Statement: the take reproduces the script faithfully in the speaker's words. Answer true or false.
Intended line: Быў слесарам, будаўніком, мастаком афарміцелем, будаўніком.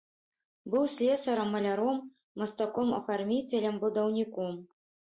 false